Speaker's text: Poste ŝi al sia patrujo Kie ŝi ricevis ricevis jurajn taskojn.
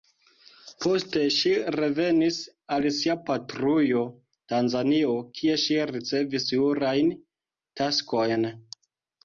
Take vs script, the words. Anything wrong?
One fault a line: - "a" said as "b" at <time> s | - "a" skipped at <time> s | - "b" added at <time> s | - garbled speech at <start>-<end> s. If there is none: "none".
- "revenis" added at 1.8 s
- "Tanzanio" added at 4.5 s
- "ricevis" skipped at 6.5 s